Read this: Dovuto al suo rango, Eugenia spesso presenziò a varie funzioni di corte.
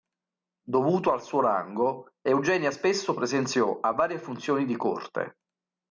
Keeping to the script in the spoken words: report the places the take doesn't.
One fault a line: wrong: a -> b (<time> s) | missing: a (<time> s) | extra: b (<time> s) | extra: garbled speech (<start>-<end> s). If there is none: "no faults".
no faults